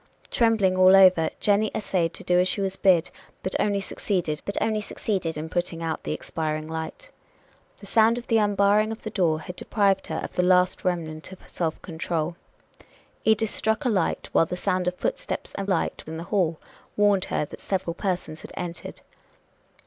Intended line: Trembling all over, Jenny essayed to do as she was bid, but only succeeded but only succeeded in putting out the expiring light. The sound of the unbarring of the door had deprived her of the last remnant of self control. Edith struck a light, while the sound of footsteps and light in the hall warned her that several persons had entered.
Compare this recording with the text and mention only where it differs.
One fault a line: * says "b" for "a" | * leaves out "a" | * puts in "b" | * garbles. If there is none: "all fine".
all fine